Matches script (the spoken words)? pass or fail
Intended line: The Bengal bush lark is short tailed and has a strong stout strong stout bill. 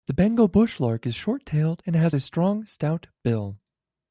fail